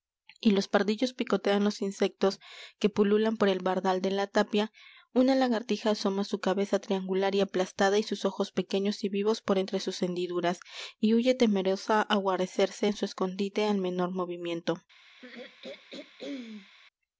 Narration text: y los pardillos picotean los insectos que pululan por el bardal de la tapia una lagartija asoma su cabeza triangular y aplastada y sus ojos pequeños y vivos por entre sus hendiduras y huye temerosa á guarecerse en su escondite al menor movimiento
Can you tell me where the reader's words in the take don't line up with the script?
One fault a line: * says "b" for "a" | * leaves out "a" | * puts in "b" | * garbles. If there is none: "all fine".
all fine